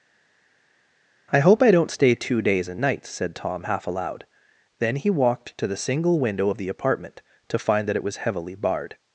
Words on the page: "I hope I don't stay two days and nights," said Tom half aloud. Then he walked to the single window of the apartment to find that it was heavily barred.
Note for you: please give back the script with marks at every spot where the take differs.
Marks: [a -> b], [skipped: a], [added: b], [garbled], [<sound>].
"I hope I don't stay two days and nights," said Tom half aloud. Then he walked to the single window of the apartment to find that it was heavily barred.